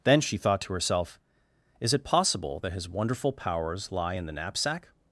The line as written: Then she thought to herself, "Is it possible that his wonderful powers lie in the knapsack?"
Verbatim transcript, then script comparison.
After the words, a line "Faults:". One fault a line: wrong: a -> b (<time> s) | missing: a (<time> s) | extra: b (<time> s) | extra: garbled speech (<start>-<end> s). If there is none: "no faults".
Then she thought to herself, "Is it possible that his wonderful powers lie in the knapsack?"
Faults:
no faults